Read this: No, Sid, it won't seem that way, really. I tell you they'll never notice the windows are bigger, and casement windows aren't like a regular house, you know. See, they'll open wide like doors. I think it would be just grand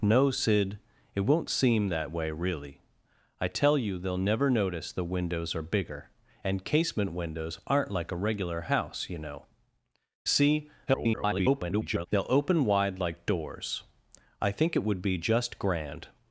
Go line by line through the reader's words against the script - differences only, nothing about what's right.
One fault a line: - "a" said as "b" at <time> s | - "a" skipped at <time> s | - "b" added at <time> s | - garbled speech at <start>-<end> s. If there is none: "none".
- garbled speech at 10.9-12.1 s